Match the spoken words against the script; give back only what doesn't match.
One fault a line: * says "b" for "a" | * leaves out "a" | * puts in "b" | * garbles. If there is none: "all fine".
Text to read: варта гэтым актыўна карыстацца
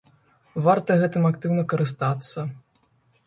all fine